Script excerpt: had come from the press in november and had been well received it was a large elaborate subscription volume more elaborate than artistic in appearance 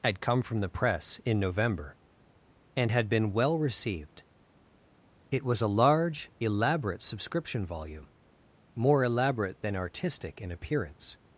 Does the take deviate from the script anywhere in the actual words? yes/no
no